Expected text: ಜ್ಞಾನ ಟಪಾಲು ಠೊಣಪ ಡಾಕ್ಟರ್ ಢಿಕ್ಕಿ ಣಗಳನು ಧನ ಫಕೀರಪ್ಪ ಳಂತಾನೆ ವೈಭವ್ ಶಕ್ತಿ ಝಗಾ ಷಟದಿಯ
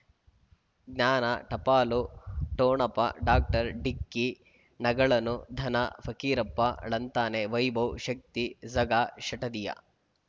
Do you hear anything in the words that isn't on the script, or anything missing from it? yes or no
no